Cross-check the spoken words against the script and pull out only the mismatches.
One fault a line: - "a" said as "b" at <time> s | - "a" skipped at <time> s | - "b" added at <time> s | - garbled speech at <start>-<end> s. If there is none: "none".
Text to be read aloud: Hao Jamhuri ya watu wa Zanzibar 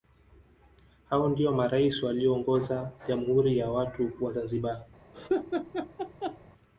- "ndio marais walioongoza" added at 1.3 s